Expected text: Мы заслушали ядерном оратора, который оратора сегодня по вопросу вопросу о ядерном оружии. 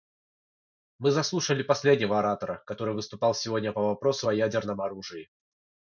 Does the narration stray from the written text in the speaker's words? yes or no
yes